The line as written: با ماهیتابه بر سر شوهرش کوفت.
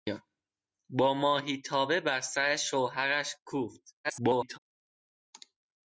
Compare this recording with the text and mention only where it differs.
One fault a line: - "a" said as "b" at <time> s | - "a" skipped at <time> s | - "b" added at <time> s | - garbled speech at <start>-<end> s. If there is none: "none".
- garbled speech at 4.0-4.6 s